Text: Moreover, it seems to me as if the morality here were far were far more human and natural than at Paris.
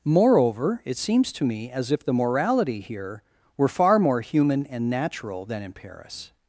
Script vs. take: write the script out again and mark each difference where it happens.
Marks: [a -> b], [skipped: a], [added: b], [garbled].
Moreover, it seems to me as if the morality here were far [skipped: were far] more human and natural than [at -> in] Paris.